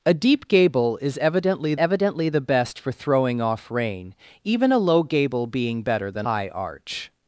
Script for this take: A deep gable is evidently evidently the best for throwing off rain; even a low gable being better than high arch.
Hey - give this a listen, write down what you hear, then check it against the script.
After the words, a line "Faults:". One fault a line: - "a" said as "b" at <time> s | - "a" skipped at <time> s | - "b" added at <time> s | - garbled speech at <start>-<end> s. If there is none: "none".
A deep gable is evidently evidently the best for throwing off rain; even a low gable being better than high arch.
Faults:
none